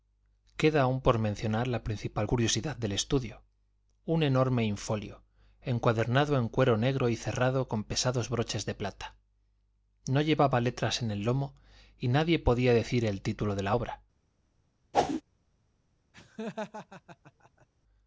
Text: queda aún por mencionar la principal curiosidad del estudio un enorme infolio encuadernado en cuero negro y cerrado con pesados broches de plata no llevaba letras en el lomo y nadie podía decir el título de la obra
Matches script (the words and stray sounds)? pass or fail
fail